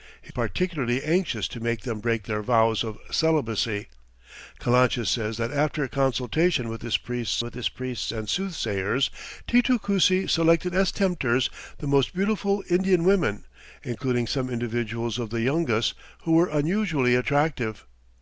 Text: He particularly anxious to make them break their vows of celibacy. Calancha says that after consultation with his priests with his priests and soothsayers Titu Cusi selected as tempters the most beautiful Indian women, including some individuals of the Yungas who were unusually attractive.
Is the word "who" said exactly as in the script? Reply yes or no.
yes